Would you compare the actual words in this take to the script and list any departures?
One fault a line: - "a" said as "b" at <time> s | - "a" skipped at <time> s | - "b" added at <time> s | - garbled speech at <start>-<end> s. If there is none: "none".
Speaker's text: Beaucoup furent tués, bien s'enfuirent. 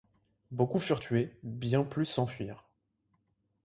- "plus" added at 1.8 s